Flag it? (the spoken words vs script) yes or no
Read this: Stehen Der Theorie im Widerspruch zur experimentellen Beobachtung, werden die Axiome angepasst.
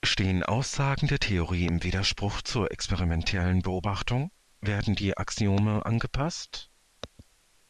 yes